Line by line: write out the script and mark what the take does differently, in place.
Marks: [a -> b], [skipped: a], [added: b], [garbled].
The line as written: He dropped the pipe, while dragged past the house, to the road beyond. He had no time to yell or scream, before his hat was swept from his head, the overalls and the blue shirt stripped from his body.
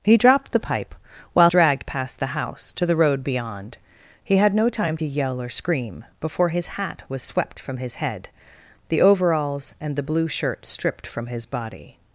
He dropped the pipe, while dragged past the house, to the road beyond. He had no time to yell or scream, before his hat was swept from his head, the overalls and the blue shirt stripped from his body.